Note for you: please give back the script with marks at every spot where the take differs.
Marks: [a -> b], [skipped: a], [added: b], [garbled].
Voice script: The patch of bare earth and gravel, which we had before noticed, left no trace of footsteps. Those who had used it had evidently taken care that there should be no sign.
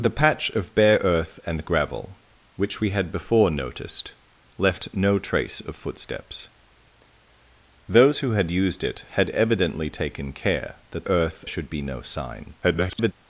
The patch of bare earth and gravel, which we had before noticed, left no trace of footsteps. Those who had used it had evidently taken care that [there -> earth] should be no sign. [garbled]